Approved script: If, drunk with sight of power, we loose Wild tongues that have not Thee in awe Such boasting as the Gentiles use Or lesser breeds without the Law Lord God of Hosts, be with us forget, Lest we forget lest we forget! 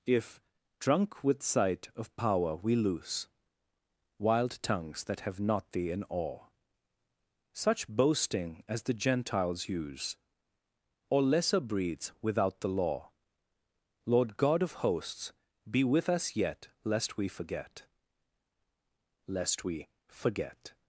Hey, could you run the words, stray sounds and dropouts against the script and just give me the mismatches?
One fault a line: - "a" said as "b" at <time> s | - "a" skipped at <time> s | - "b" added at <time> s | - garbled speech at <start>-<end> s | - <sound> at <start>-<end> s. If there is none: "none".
- "forget" said as "yet" at 16.3 s